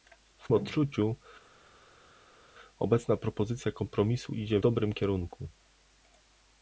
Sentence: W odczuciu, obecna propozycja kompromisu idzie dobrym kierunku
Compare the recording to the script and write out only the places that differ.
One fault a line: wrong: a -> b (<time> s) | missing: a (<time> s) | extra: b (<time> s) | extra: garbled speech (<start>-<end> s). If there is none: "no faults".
no faults